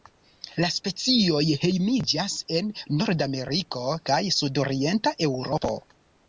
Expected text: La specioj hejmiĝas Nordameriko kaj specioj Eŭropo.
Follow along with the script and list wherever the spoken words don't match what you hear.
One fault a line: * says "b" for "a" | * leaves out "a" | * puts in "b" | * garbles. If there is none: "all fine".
* puts in "en"
* says "sudorienta" for "specioj"